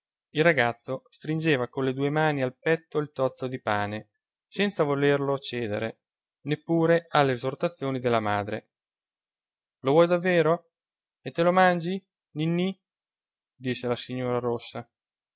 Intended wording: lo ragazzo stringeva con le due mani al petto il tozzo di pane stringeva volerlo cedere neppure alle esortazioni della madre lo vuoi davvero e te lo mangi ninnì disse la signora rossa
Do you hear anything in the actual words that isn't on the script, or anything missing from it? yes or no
yes